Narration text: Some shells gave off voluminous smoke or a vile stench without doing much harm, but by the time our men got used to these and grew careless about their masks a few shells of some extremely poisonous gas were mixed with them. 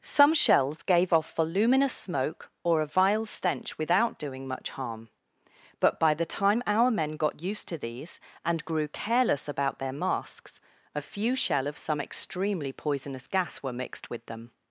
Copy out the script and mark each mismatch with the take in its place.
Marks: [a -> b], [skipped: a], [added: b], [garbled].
Some shells gave off voluminous smoke or a vile stench without doing much harm, but by the time our men got used to these and grew careless about their masks a few [shells -> shell] of some extremely poisonous gas were mixed with them.